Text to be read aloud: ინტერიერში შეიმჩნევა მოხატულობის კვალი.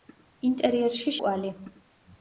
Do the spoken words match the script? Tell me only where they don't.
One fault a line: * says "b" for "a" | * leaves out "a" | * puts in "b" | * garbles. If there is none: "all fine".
* leaves out "შეიმჩნევა მოხატულობის"